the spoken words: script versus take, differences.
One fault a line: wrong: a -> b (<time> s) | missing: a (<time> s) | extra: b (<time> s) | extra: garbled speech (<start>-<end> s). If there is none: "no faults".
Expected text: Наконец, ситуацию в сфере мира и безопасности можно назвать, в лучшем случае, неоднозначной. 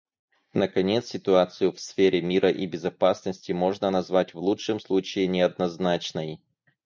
no faults